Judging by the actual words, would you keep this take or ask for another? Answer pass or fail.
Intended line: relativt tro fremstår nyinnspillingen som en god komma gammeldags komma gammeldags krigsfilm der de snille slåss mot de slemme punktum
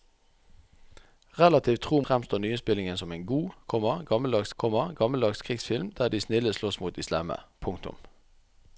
pass